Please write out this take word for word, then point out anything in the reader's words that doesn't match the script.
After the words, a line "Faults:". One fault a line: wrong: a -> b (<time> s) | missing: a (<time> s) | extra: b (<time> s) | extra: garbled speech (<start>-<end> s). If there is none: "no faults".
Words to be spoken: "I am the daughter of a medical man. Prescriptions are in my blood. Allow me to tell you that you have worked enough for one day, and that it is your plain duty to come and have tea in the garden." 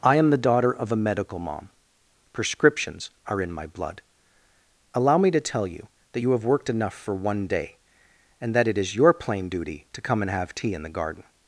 "I am the daughter of a medical mom. Prescriptions are in my blood. Allow me to tell you that you have worked enough for one day, and that it is your plain duty to come and have tea in the garden."
Faults:
wrong: man -> mom (1.4 s)